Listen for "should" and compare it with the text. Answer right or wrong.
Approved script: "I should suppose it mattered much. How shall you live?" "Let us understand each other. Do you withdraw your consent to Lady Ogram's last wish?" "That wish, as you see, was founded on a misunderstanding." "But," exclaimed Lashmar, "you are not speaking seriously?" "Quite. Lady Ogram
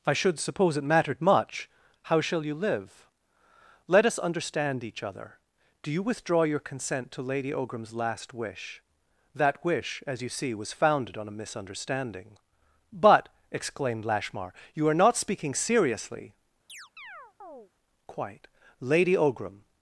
right